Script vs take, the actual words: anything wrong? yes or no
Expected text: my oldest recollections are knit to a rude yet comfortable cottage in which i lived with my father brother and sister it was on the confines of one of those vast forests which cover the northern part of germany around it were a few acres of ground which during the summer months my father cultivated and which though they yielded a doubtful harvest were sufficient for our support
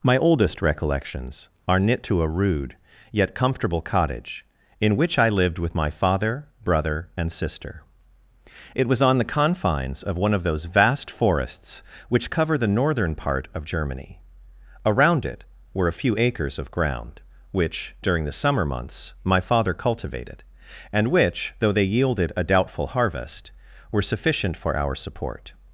no